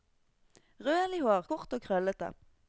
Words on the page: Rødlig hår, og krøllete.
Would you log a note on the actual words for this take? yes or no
yes